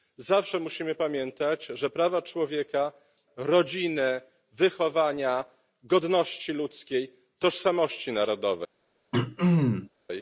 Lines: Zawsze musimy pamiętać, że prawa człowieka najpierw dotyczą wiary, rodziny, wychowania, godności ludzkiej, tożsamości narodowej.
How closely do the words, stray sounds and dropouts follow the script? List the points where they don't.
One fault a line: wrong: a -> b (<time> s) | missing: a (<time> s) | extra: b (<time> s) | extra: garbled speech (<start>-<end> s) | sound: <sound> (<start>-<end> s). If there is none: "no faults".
missing: najpierw dotyczą wiary (2.9 s)
sound: throat clearing (9.1-9.9 s)